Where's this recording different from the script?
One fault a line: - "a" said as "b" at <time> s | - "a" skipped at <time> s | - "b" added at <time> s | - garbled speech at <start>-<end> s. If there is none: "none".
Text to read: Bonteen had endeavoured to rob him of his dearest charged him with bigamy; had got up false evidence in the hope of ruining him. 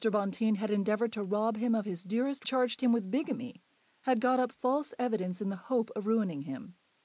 none